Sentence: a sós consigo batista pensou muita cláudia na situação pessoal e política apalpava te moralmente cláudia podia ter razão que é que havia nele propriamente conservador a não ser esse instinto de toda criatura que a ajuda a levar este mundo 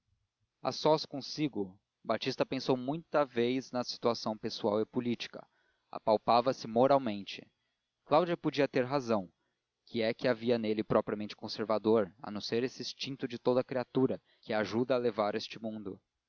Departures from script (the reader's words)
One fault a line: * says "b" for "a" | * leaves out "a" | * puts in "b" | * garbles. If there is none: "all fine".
* says "vez" for "cláudia"
* says "se" for "te"